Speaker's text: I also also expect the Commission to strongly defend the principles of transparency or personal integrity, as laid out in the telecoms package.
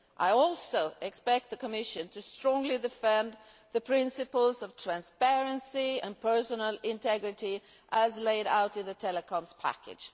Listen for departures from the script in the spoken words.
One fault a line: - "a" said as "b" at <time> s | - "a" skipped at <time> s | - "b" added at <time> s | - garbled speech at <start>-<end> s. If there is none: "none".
- "also" skipped at 0.9 s
- "or" said as "and" at 6.0 s